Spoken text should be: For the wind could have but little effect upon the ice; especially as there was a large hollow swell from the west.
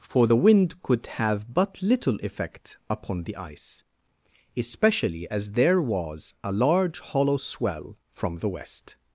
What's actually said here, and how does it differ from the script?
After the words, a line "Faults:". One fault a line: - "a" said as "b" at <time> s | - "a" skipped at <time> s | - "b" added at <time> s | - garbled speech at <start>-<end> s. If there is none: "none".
For the wind could have but little effect upon the ice; especially as there was a large hollow swell from the west.
Faults:
none